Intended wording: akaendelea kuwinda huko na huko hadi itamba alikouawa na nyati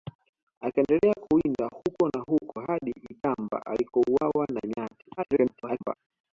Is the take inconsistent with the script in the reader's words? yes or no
yes